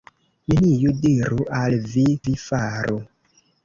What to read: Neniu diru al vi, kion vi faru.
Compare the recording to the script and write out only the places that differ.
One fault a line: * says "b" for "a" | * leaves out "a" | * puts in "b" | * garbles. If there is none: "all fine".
* leaves out "kion"